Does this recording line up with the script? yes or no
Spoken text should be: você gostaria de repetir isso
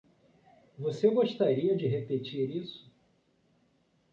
yes